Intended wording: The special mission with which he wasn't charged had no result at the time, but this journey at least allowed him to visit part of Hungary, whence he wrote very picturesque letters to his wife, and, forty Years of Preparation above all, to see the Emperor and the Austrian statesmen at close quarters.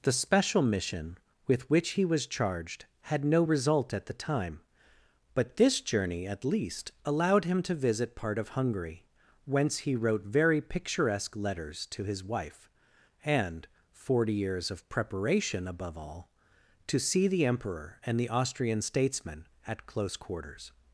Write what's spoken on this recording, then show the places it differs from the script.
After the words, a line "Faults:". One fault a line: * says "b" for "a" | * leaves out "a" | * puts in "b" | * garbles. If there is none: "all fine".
The special mission with which he was charged had no result at the time, but this journey at least allowed him to visit part of Hungary, whence he wrote very picturesque letters to his wife, and, forty Years of Preparation above all, to see the Emperor and the Austrian statesmen at close quarters.
Faults:
* says "was" for "wasn't"